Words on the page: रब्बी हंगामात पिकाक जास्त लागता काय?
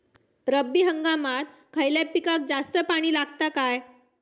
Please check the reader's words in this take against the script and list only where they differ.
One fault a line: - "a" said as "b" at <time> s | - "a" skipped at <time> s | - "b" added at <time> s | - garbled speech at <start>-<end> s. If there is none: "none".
- "खयल्या" added at 1.7 s
- "पाणी" added at 2.9 s